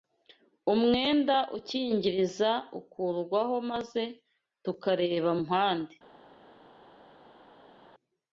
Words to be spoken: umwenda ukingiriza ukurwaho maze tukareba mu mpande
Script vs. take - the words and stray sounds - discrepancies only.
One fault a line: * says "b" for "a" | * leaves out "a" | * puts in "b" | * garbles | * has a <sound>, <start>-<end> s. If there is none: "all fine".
* leaves out "mu"